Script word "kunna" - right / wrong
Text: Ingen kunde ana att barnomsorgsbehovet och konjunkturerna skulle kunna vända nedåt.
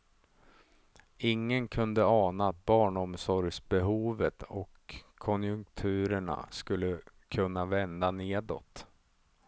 right